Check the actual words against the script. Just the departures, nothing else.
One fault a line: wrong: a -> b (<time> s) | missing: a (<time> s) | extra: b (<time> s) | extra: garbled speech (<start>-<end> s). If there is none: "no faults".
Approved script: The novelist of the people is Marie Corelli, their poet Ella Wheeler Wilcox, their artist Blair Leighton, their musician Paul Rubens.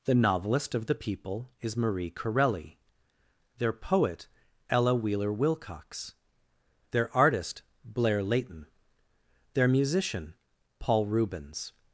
no faults